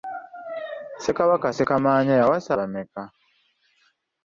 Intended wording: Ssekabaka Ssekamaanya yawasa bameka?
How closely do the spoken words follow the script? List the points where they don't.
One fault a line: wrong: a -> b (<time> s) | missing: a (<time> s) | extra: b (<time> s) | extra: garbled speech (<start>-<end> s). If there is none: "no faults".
no faults